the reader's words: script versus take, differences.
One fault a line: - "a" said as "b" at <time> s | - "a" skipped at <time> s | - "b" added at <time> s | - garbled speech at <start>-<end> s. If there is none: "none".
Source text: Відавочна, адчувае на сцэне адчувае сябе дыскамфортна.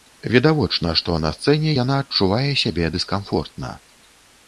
- "адчувае" said as "што" at 1.0 s
- "яна" added at 1.8 s